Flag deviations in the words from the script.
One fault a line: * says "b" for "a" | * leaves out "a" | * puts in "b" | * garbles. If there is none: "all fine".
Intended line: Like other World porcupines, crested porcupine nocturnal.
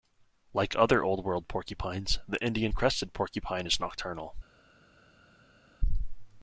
* puts in "Old"
* puts in "the Indian"
* puts in "is"